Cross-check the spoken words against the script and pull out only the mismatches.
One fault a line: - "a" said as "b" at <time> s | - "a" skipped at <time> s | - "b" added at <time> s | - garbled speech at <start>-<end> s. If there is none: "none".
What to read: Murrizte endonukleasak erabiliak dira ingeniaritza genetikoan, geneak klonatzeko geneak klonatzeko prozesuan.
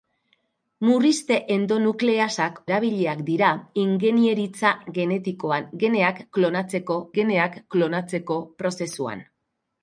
none